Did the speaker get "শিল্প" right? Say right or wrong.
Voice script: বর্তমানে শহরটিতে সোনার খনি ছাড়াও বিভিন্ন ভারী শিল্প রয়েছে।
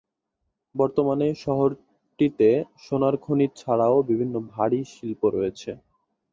right